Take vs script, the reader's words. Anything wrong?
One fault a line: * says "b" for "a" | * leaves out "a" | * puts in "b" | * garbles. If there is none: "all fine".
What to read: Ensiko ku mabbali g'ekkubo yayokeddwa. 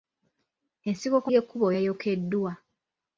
* leaves out "mabbali"